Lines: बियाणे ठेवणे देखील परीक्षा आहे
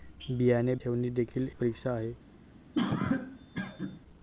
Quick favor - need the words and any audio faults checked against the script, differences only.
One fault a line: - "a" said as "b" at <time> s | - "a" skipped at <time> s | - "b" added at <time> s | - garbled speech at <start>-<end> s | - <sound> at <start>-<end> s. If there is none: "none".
- cough at 2.7-4.0 s